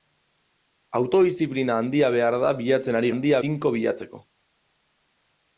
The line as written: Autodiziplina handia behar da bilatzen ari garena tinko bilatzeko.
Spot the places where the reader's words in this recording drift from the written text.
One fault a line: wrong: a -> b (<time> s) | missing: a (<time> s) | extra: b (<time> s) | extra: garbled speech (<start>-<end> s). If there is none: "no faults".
wrong: garena -> handia (3.1 s)